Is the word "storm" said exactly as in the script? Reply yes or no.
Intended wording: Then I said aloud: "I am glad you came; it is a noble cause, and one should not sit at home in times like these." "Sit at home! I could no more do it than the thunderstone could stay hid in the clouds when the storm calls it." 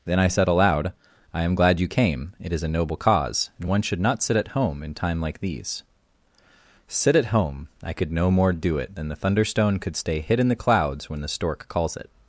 no